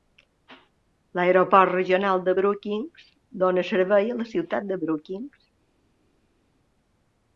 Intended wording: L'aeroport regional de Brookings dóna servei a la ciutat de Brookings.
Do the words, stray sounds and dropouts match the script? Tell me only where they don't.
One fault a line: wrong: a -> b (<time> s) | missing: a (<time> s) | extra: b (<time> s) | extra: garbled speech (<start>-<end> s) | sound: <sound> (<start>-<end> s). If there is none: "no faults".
no faults